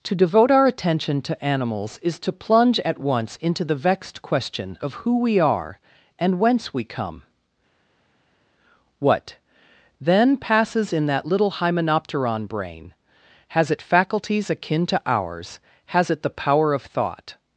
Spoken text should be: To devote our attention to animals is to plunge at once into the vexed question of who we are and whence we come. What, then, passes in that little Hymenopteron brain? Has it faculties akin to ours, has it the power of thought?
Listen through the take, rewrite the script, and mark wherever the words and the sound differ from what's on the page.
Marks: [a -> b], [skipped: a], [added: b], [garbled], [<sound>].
To devote our attention to animals is to plunge at once into the vexed question of who we are and whence we come. What, then, passes in that little Hymenopteron brain? Has it faculties akin to ours, has it the power of thought?